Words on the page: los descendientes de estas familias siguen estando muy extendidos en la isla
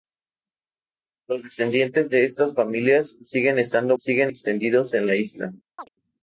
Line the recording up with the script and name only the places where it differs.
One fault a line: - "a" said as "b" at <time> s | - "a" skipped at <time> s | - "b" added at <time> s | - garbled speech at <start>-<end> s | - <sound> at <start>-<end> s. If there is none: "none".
- "muy" said as "siguen" at 3.9 s
- chirp at 5.8-5.9 s